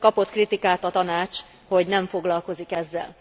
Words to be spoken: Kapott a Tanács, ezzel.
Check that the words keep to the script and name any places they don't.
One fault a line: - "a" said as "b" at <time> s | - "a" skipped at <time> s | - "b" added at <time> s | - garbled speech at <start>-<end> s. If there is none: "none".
- "kritikát" added at 0.3 s
- "hogy nem foglalkozik" added at 1.7 s